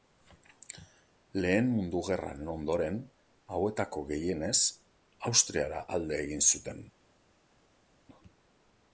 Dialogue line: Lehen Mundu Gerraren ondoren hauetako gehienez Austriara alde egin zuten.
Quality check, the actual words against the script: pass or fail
pass